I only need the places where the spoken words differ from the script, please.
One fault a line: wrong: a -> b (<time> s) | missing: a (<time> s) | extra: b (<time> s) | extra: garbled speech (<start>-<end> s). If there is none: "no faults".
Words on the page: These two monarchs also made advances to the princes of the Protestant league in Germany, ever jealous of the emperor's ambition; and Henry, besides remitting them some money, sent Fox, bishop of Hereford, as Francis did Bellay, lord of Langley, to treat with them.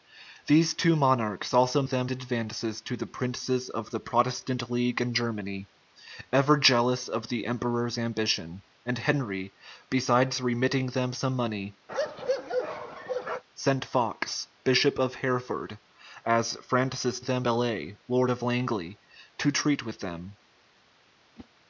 wrong: made -> them (1.8 s)
wrong: did -> them (17.2 s)